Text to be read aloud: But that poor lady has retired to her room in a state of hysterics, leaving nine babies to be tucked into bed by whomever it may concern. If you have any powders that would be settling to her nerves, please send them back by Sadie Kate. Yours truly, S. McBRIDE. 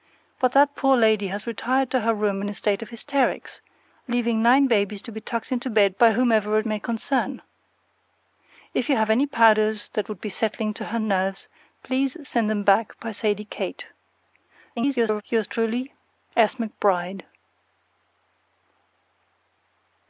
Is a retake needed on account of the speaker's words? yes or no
yes